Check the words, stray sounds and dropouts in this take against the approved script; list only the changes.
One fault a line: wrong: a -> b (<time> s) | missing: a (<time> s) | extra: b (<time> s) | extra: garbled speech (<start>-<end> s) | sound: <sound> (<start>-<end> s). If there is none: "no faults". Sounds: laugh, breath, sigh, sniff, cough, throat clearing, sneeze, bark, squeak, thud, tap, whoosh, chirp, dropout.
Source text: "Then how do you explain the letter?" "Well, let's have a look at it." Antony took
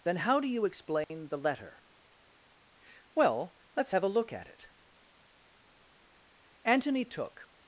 sound: dropout (1.0-1.1 s)